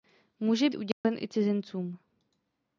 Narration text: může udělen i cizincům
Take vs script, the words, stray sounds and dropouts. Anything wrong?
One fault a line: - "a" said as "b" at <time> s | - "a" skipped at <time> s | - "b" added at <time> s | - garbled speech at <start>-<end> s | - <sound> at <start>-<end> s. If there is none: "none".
- dropout at 0.9-1.0 s